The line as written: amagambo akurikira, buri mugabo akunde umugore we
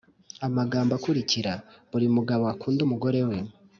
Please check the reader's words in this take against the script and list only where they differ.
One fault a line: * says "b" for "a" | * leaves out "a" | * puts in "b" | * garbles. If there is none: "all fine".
all fine